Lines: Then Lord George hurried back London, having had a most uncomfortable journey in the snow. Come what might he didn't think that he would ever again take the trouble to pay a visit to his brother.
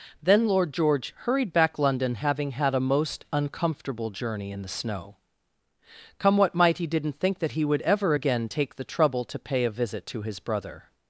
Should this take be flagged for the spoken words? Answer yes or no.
no